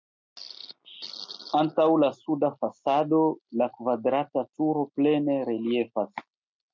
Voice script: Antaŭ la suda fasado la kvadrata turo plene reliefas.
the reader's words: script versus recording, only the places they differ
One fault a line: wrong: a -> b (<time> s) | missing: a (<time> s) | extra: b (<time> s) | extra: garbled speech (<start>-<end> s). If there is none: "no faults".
no faults